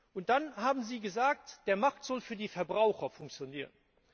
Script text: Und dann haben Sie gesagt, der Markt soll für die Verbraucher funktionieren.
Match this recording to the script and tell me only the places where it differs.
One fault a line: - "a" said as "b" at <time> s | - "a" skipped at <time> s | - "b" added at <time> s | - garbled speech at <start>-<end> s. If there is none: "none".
none